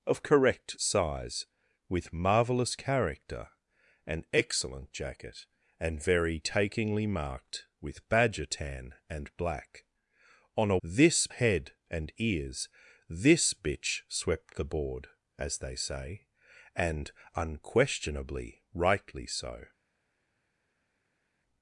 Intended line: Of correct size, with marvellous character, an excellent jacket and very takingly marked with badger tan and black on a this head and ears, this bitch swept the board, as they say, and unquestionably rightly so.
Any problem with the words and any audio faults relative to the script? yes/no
no